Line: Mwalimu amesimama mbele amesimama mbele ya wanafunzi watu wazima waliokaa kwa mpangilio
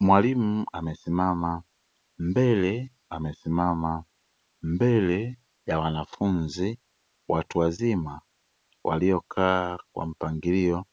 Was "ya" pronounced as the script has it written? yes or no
yes